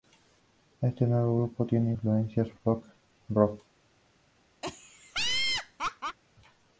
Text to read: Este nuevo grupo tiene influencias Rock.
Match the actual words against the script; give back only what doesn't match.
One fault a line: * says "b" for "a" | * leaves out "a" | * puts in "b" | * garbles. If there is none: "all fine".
* puts in "Folk"